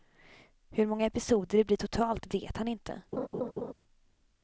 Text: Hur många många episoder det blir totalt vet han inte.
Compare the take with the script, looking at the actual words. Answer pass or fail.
fail